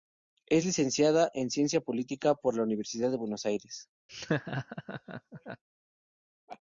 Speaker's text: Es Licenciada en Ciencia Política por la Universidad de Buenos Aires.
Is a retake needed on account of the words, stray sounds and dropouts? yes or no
yes